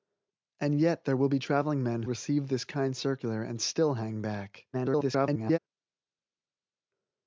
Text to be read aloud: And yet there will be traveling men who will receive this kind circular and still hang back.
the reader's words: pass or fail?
fail